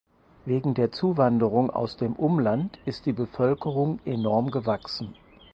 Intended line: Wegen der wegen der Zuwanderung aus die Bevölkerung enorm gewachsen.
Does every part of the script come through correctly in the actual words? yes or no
no